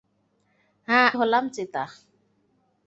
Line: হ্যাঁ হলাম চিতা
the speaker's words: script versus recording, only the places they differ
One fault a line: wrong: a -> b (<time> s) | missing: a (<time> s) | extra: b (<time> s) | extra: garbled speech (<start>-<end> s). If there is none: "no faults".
no faults